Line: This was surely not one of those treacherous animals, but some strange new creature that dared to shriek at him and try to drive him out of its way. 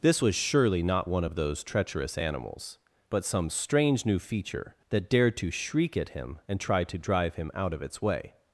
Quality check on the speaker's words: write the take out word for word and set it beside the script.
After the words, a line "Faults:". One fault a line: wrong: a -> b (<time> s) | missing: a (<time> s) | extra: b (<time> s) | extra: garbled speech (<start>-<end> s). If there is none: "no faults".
This was surely not one of those treacherous animals, but some strange new feature that dared to shriek at him and try to drive him out of its way.
Faults:
wrong: creature -> feature (4.2 s)